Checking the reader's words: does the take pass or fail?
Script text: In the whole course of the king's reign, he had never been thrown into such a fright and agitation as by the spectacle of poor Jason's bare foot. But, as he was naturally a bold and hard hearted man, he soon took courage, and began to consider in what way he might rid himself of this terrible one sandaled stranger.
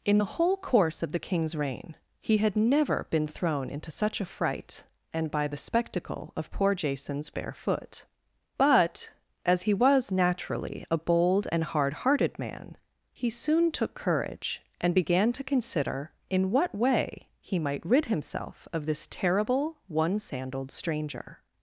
fail